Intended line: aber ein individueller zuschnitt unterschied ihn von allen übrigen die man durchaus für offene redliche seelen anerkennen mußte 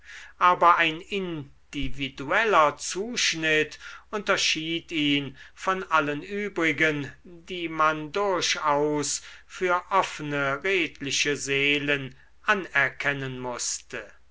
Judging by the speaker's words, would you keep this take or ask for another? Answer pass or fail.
pass